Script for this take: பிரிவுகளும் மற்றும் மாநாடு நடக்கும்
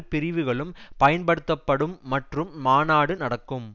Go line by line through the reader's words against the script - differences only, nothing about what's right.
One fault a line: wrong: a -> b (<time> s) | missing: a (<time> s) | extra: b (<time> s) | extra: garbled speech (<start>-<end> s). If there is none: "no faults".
extra: பயன்படுத்தப்படும் (1.0 s)